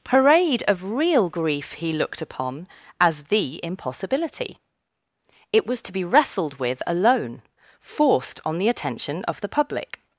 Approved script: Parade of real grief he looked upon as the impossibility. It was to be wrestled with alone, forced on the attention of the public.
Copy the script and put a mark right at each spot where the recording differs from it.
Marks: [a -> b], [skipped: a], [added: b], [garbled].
Parade of real grief he looked upon as the impossibility. It was to be wrestled with alone, forced on the attention of the public.